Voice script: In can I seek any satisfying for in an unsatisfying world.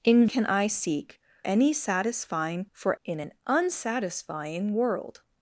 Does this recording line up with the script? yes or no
yes